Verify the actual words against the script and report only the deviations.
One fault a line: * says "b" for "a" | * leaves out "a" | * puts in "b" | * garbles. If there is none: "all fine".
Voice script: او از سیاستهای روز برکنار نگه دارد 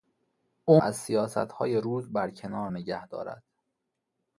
all fine